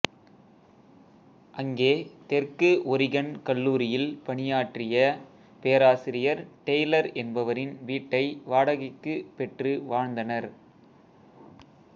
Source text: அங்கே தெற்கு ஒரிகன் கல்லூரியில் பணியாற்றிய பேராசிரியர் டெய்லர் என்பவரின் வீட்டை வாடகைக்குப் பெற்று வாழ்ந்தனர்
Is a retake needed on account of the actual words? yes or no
no